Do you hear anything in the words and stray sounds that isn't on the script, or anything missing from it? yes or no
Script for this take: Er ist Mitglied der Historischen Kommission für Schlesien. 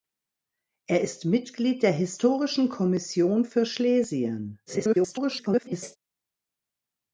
yes